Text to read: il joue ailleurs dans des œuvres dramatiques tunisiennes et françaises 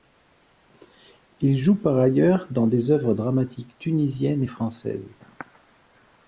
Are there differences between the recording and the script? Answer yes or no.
yes